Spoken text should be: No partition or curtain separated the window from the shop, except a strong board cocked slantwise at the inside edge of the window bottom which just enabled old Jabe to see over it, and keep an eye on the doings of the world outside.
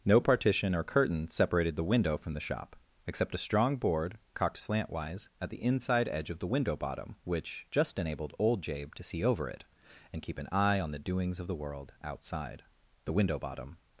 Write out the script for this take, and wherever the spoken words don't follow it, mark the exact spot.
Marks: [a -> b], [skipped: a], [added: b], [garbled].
No partition or curtain separated the window from the shop, except a strong board cocked slantwise at the inside edge of the window bottom which just enabled old Jabe to see over it, and keep an eye on the doings of the world outside. [added: The window bottom]